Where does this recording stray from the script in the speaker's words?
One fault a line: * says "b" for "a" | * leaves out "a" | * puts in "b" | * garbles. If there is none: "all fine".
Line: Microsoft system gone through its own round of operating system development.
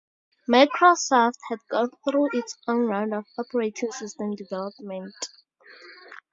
* says "had" for "system"